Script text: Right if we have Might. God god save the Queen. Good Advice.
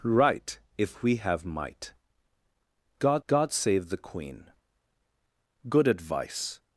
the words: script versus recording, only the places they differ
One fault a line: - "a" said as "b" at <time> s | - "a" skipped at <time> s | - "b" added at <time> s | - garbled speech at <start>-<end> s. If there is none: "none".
none